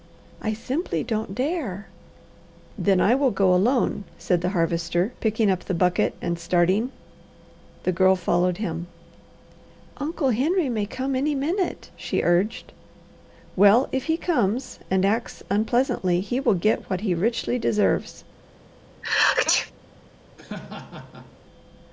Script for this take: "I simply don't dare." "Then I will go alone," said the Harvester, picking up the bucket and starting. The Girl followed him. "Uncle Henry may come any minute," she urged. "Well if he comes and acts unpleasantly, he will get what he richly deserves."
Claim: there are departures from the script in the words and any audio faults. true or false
true